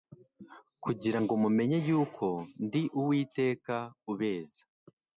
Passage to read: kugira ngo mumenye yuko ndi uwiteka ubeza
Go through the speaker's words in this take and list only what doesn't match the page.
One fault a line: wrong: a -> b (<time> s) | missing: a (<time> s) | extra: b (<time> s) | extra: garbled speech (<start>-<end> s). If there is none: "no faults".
no faults